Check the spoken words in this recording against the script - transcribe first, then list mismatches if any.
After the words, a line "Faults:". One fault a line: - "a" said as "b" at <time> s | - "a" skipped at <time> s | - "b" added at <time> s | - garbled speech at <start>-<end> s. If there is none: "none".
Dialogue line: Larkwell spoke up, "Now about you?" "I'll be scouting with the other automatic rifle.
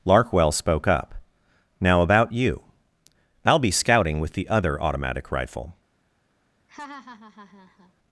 Larkwell spoke up, "Now about you?" "I'll be scouting with the other automatic rifle.
Faults:
none